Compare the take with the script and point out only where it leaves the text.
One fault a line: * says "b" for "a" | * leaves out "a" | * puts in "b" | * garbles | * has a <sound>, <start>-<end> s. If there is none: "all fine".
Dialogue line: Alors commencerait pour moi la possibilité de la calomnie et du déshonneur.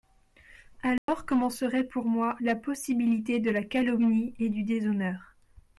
* has a dropout, 1.0-1.1 s